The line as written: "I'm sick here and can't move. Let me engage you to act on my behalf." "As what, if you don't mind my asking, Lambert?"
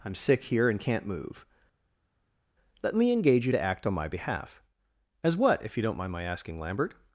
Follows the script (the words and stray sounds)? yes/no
yes